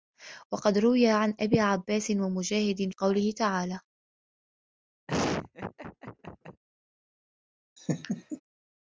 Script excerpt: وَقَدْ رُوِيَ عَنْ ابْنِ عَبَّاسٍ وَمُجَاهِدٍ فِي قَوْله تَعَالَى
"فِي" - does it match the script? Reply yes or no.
no